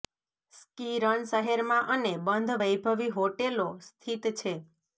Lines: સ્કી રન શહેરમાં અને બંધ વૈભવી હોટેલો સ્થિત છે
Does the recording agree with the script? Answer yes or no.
yes